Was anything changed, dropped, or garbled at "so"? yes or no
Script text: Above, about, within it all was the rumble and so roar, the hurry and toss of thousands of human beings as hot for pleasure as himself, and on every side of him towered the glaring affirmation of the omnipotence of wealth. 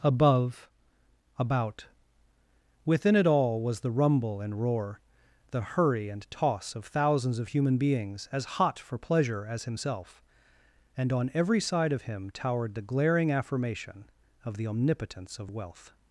yes